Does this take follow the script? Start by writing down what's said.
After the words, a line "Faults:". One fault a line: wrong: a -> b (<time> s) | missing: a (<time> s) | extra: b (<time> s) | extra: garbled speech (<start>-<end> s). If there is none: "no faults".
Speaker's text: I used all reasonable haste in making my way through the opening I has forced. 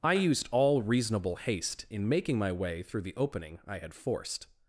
I used all reasonable haste in making my way through the opening I had forced.
Faults:
wrong: has -> had (3.8 s)